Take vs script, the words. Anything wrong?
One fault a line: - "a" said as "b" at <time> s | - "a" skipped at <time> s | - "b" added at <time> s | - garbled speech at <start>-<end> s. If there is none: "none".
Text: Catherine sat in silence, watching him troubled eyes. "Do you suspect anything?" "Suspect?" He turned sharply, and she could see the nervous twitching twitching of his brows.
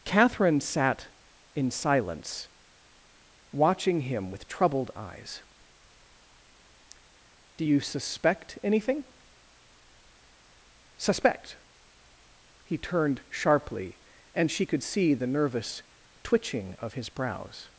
- "with" added at 4.3 s
- "twitching" skipped at 16.7 s